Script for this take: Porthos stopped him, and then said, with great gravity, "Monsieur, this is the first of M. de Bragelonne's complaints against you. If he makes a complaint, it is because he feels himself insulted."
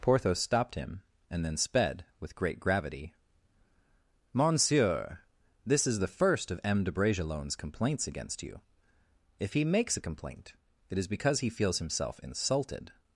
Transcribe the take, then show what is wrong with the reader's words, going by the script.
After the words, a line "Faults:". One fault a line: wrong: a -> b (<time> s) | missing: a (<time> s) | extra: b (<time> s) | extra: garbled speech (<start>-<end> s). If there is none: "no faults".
Porthos stopped him, and then sped, with great gravity, "Monsieur, this is the first of M. de Bragelonne's complaints against you. If he makes a complaint, it is because he feels himself insulted."
Faults:
wrong: said -> sped (1.6 s)